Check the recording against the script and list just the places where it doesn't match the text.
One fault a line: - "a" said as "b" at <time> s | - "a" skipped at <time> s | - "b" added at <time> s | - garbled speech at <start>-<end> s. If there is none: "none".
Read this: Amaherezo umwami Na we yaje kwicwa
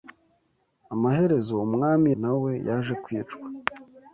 none